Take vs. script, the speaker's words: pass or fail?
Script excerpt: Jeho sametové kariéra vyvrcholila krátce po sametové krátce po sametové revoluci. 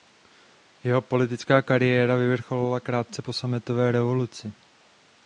fail